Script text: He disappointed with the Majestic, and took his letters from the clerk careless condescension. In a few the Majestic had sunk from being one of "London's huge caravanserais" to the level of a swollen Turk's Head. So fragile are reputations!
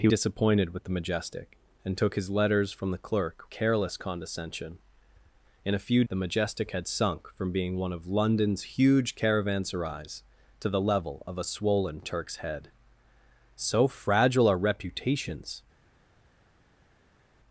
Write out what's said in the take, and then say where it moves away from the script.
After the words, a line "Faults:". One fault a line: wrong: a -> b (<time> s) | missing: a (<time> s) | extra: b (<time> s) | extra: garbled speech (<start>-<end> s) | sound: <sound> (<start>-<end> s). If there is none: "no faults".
He disappointed with the Majestic, and took his letters from the clerk careless condescension. In a few the Majestic had sunk from being one of "London's huge caravanserais" to the level of a swollen Turk's Head. So fragile are reputations!
Faults:
no faults